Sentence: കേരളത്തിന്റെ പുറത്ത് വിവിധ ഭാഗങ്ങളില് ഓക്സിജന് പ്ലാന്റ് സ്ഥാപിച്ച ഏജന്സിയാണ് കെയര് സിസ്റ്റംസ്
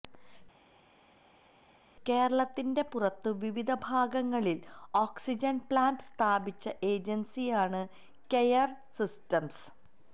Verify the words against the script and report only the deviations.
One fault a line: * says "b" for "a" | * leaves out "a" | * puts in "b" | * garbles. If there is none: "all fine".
all fine